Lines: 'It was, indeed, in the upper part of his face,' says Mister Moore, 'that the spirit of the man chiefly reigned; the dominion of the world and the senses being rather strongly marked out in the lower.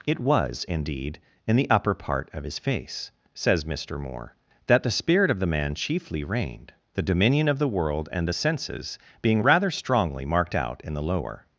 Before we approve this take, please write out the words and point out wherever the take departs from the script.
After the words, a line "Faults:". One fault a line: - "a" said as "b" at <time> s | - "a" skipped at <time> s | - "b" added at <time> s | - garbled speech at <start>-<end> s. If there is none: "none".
'It was, indeed, in the upper part of his face,' says Mister Moore, 'that the spirit of the man chiefly reigned; the dominion of the world and the senses being rather strongly marked out in the lower.
Faults:
none